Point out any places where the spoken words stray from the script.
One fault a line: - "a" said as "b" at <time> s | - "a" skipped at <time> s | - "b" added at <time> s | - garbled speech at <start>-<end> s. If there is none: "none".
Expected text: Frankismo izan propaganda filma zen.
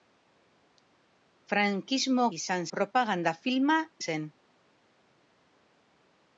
none